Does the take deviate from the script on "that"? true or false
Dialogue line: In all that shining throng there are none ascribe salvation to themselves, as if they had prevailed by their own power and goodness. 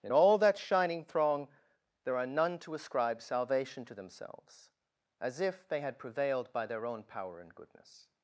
false